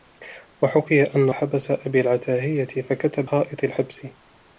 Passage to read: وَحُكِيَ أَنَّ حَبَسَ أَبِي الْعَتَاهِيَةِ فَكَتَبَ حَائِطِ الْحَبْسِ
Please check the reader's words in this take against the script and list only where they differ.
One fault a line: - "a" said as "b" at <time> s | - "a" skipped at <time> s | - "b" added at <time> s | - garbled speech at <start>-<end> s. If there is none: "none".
none